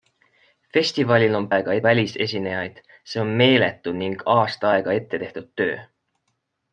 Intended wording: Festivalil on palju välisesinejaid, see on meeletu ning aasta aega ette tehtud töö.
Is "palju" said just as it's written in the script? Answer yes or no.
no